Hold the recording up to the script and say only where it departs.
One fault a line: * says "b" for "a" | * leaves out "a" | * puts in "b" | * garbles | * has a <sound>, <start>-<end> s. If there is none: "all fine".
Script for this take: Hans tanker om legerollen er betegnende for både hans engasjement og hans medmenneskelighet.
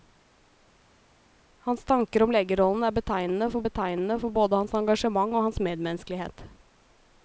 * puts in "betegnende for"